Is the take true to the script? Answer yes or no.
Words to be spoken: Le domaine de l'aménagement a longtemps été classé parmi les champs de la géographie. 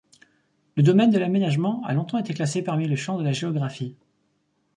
yes